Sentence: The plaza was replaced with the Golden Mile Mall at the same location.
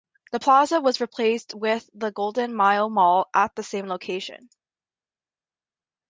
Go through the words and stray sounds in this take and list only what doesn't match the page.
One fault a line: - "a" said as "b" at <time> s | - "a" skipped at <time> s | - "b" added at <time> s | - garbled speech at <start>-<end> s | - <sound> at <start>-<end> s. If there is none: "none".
none